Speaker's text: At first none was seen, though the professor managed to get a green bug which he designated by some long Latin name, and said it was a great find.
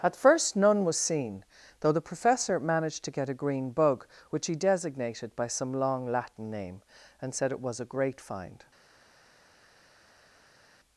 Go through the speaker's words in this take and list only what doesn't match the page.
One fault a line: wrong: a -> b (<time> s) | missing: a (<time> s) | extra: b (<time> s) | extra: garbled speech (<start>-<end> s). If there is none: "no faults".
no faults